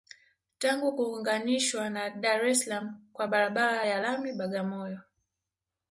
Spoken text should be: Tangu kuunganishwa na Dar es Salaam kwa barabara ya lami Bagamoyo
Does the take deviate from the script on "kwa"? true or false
false